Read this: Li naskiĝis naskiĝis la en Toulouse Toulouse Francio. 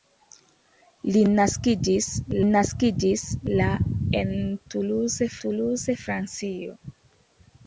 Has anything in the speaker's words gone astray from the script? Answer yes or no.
no